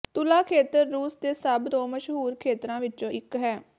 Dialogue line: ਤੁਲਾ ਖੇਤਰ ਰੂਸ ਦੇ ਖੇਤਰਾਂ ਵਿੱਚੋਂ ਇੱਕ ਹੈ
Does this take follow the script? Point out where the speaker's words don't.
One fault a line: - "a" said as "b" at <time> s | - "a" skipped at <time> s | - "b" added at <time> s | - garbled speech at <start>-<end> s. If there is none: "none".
- "ਸਭ ਤੋਂ ਮਸ਼ਹੂਰ" added at 1.3 s